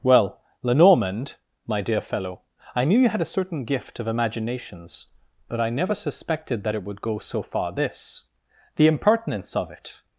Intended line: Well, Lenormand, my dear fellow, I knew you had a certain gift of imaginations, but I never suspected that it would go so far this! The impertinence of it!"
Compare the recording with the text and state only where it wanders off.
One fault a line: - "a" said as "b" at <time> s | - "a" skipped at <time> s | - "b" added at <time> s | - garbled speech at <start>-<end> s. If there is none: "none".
none